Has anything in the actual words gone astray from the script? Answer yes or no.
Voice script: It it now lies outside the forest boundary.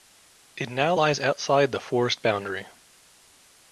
yes